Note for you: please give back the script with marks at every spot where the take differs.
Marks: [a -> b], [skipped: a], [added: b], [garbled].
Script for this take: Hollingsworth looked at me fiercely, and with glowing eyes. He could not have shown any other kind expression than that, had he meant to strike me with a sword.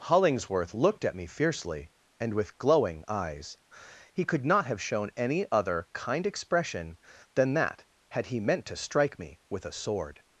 Hollingsworth looked at me fiercely, and with glowing eyes. He could not have shown any other kind expression than that, had he meant to strike me with a sword.